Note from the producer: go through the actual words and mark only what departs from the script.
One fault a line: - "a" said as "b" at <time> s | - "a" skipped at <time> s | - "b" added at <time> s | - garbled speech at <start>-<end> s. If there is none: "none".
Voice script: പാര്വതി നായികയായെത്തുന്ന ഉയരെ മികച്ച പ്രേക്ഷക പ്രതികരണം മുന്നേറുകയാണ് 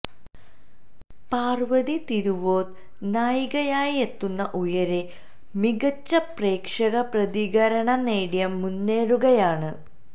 - "തിരുവോത്ത്" added at 2.1 s
- "നേടി" added at 8.1 s